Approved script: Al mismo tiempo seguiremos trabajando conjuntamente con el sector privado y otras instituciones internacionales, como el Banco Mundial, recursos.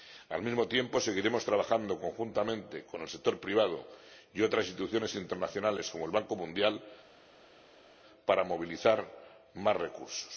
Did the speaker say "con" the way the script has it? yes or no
yes